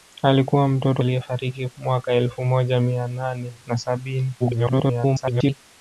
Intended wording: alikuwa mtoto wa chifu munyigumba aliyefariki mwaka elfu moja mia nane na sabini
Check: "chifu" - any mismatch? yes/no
yes